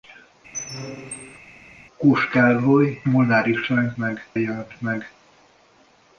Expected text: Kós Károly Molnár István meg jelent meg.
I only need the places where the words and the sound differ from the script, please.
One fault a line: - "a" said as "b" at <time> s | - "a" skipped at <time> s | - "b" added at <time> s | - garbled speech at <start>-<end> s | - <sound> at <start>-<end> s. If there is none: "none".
- squeak at 0.5-1.4 s